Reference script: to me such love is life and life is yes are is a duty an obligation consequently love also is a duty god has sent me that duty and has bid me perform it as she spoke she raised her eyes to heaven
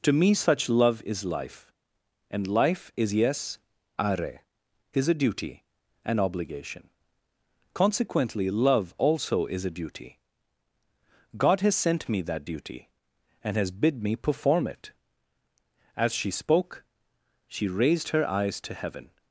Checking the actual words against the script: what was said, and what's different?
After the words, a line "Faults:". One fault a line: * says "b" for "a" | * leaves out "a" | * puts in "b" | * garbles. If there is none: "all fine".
to me such love is life and life is yes are is a duty an obligation consequently love also is a duty god has sent me that duty and has bid me perform it as she spoke she raised her eyes to heaven
Faults:
all fine